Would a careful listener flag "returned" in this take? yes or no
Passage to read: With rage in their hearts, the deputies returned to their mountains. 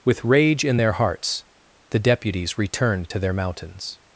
no